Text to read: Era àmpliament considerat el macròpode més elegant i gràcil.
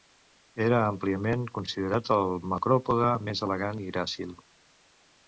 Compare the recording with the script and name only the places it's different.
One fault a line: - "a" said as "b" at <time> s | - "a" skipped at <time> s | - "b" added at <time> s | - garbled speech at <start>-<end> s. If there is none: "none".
none